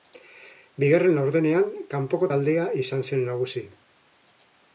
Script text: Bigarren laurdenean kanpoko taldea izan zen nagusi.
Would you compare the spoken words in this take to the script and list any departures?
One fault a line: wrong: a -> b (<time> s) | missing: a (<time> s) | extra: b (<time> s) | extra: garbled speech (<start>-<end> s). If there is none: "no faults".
no faults